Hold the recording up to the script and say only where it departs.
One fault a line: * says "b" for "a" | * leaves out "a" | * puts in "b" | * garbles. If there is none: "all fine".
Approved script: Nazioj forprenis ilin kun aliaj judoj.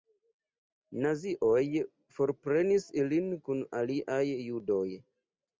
all fine